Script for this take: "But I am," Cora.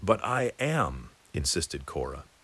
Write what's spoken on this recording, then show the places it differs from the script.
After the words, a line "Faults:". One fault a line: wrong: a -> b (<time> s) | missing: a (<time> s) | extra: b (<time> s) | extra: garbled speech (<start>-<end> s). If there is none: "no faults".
"But I am," insisted Cora.
Faults:
extra: insisted (1.3 s)